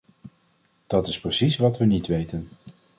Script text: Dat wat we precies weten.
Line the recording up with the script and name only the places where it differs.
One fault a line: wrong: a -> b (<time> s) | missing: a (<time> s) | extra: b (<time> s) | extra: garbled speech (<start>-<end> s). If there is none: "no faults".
extra: is precies (1.1 s)
wrong: precies -> niet (1.9 s)